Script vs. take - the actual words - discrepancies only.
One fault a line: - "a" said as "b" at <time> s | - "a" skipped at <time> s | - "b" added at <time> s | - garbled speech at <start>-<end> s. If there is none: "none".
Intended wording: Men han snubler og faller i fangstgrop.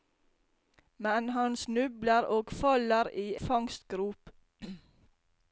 none